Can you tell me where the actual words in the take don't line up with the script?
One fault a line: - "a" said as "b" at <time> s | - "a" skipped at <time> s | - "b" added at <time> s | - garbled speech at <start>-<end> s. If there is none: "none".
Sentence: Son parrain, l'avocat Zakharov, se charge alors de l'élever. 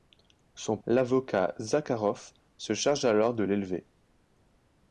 - "parrain" skipped at 0.8 s